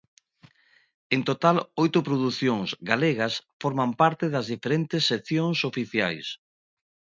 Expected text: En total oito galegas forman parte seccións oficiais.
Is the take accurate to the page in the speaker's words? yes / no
no